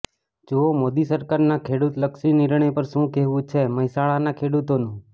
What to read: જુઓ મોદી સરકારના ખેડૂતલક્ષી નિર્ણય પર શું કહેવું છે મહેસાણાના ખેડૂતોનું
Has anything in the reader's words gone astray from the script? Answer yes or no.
no